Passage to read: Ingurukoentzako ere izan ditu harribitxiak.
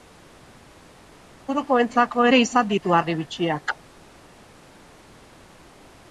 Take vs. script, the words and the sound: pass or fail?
pass